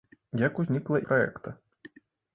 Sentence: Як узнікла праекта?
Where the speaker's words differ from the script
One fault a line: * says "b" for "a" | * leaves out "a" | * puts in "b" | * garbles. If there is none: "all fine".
all fine